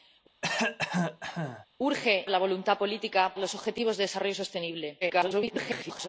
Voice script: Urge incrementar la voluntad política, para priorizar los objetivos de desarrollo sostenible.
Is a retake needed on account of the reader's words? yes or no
yes